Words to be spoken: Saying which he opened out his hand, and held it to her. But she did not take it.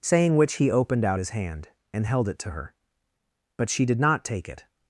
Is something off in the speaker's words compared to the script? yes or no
no